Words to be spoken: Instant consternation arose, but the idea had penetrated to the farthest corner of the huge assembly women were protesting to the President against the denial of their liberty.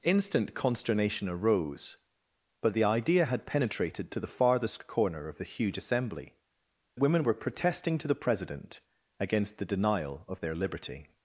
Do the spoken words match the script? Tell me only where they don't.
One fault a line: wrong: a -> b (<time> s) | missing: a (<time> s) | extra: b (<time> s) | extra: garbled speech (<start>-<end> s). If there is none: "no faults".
no faults